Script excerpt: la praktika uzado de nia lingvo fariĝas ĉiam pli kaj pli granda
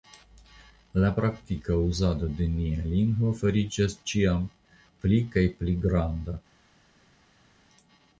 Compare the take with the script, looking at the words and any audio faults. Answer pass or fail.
pass